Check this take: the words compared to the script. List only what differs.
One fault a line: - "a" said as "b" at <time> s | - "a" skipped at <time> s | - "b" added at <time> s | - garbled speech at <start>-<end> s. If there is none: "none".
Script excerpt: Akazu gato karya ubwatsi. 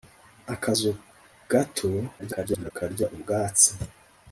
- garbled speech at 2.2-2.7 s